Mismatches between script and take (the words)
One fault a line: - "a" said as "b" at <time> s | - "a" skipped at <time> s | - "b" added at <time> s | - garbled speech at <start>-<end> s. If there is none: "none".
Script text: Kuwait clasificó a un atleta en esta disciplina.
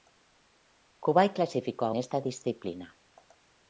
- "un atleta en" skipped at 1.9 s